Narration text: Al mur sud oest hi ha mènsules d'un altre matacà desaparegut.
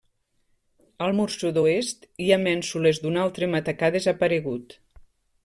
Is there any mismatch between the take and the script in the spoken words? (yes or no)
no